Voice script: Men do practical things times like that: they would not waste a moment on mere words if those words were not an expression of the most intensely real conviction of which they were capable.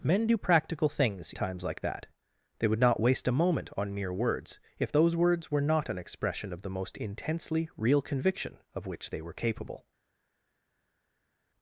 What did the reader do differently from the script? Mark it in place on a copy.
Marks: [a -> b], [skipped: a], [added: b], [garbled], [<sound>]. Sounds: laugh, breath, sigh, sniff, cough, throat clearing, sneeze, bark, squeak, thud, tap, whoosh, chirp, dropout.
Men do practical things times like that: they would not waste a moment on mere words if those words were not an expression of the most intensely real conviction of which they were capable.